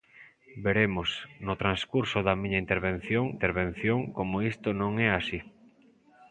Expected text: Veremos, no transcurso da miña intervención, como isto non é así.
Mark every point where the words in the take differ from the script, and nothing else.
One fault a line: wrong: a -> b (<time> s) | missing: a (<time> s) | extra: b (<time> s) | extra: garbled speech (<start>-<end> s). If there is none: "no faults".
extra: intervención (3.4 s)